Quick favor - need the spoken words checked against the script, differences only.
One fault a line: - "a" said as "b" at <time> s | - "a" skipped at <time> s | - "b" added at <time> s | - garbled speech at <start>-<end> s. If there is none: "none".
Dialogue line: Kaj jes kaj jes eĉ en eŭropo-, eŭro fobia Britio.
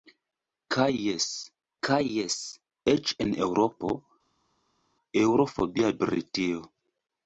none